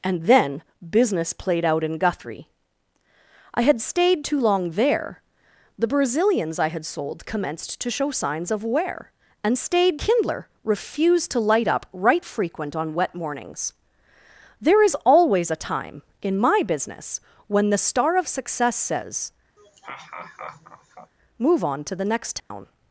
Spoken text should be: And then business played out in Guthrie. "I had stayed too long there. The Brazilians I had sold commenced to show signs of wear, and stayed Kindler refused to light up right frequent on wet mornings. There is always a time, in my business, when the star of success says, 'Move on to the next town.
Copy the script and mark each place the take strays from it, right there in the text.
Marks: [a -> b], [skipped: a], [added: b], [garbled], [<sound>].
And then business played out in Guthrie. "I had stayed too long there. The Brazilians I had sold commenced to show signs of wear, and stayed Kindler refused to light up right frequent on wet mornings. There is always a time, in my business, when the star of success says, [laugh] 'Move on to the next town. [dropout]